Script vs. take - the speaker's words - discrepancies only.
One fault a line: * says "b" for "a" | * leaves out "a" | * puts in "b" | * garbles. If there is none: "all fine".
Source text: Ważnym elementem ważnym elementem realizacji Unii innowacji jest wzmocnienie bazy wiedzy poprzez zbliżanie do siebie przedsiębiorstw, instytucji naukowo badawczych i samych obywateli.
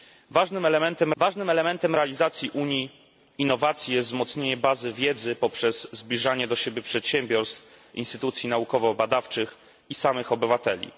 all fine